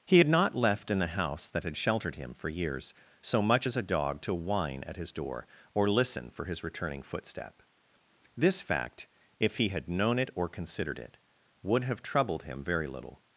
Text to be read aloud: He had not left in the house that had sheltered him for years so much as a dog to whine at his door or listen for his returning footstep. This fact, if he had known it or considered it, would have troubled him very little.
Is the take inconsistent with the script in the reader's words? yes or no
no